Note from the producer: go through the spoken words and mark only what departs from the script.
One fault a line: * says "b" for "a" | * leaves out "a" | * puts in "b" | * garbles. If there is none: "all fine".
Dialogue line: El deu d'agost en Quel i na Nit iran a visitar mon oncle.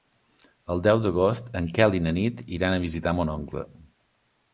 all fine